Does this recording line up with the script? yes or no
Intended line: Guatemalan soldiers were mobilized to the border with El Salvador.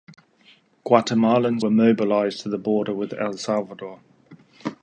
no